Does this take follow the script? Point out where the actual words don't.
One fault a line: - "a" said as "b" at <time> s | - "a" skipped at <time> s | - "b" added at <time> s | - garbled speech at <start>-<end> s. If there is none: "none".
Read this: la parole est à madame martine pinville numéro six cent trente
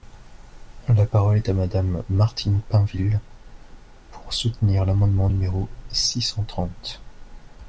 - "pour soutenir l'amendement" added at 4.1 s